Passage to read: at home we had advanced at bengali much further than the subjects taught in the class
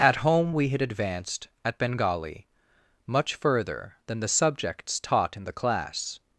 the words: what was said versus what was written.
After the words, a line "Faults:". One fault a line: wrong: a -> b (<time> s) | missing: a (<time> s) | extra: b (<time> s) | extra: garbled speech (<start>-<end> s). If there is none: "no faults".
at home we had advanced at bengali much further than the subjects taught in the class
Faults:
no faults